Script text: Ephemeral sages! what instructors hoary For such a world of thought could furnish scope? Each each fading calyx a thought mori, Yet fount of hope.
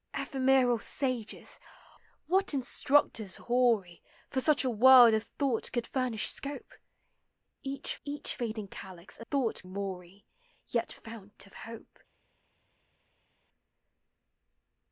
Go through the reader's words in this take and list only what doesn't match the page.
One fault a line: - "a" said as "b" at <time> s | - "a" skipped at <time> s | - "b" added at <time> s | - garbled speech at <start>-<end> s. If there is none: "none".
none